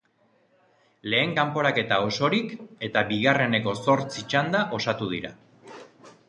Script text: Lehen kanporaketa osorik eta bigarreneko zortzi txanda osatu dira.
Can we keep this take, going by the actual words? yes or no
yes